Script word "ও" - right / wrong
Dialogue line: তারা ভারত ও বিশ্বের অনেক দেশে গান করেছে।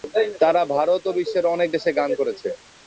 right